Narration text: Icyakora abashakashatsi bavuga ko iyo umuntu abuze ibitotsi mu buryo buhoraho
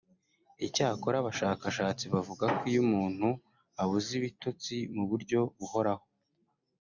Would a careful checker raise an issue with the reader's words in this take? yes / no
no